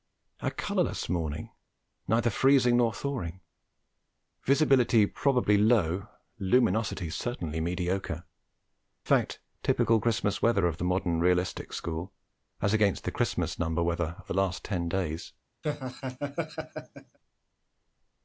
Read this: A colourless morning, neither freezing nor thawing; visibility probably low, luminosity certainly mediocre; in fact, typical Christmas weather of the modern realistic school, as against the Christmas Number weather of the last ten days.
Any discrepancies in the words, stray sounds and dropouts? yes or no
yes